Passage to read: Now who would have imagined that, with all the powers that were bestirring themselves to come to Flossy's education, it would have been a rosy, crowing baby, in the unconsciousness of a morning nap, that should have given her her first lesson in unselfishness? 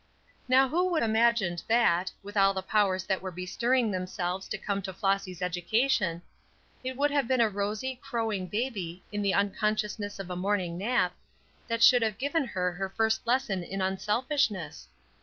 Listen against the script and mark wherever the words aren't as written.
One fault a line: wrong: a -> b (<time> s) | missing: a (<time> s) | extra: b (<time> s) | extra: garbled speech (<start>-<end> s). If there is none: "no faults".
missing: have (1.0 s)